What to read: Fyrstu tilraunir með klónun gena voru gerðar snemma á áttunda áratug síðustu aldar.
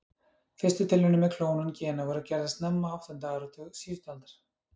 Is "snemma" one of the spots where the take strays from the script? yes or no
no